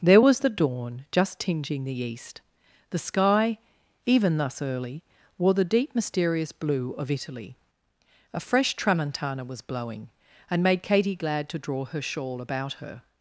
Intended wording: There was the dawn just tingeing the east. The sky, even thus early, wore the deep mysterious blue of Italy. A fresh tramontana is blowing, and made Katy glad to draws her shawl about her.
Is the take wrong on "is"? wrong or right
wrong